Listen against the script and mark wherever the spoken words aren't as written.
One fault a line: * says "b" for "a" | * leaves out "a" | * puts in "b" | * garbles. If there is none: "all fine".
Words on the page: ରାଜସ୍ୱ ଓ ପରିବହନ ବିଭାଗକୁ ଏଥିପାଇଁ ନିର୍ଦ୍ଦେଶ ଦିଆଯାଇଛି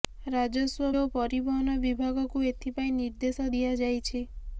all fine